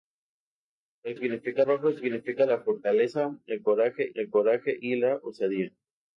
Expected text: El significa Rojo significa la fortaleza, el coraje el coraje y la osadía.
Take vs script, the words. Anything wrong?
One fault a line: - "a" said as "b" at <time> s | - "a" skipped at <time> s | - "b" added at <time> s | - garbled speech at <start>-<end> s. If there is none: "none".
none